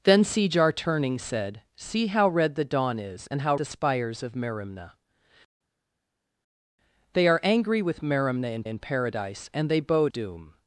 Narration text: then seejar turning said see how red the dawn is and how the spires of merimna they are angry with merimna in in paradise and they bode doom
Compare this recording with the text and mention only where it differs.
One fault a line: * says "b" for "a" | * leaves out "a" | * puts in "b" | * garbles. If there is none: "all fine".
all fine